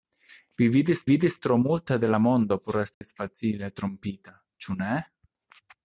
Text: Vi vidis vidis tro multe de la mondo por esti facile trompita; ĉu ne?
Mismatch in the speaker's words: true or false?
false